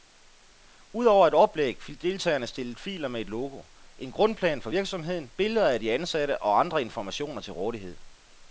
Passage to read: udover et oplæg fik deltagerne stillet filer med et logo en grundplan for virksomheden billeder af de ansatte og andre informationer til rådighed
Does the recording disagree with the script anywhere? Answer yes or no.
no